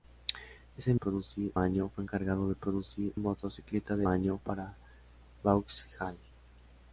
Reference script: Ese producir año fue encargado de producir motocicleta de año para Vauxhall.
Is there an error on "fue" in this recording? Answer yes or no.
no